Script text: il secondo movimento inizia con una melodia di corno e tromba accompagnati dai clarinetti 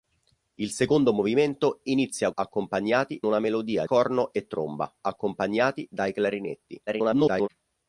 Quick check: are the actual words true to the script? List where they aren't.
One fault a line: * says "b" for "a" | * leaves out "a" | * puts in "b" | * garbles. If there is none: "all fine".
* says "accompagnati" for "con"
* leaves out "di"
* garbles